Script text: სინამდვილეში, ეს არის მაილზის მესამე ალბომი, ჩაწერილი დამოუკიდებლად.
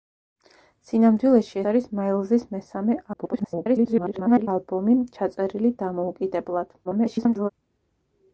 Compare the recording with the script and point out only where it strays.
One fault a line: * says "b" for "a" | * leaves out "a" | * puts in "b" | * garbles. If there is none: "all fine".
* leaves out "ეს"
* garbles
* garbles